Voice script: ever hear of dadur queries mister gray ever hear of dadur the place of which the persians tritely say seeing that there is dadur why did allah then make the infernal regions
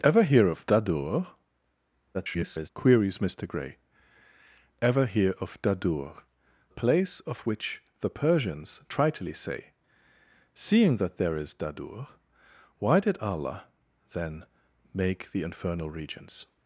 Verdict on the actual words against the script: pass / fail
fail